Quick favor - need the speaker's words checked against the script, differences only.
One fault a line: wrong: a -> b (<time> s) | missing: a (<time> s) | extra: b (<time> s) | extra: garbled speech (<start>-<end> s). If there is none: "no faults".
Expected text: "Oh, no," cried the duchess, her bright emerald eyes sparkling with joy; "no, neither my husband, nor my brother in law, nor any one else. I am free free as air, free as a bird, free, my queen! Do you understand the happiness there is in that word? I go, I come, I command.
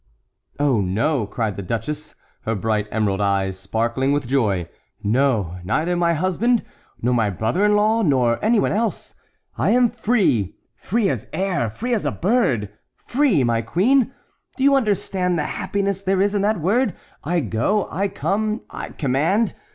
no faults